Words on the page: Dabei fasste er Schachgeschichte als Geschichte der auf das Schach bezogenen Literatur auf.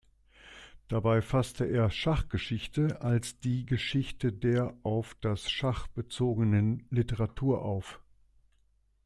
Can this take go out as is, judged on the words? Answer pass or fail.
fail